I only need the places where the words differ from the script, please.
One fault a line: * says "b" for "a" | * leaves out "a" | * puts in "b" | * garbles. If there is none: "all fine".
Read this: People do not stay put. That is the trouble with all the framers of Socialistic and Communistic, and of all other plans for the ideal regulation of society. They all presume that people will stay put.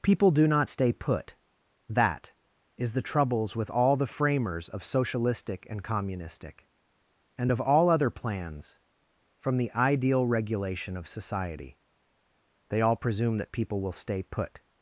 * says "troubles" for "trouble"
* says "from" for "for"